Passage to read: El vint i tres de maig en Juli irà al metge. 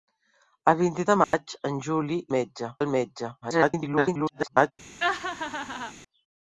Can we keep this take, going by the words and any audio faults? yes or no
no